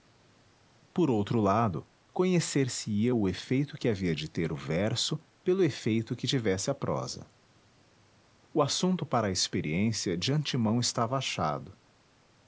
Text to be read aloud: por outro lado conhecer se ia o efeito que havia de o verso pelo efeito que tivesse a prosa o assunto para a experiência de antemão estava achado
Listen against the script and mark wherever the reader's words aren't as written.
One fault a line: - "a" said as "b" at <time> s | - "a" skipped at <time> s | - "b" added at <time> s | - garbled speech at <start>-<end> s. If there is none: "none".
- "ter" added at 4.3 s